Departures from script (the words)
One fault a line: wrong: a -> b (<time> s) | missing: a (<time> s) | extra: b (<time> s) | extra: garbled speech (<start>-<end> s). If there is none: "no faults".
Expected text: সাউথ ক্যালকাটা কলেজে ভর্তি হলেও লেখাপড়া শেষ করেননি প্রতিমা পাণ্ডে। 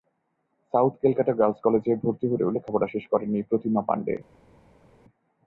extra: গার্লস (1.3 s)